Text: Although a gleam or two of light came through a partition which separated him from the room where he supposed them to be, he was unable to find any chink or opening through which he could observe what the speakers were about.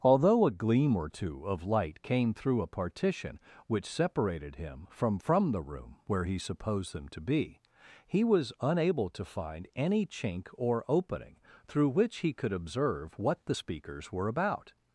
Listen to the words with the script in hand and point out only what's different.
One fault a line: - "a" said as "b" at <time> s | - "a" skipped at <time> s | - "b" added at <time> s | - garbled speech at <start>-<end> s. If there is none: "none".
- "from" added at 5.2 s